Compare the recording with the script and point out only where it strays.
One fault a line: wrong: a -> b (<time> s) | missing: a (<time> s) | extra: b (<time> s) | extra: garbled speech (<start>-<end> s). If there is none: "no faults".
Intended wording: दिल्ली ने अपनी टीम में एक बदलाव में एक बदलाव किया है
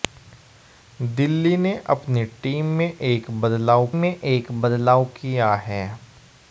no faults